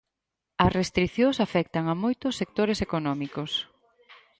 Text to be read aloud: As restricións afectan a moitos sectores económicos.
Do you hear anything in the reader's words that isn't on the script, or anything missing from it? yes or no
no